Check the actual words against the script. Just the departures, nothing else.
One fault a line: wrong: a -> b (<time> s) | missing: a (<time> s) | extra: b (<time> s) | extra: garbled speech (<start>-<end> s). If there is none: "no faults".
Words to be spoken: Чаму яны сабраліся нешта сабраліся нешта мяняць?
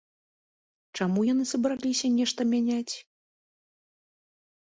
missing: сабраліся нешта (2.4 s)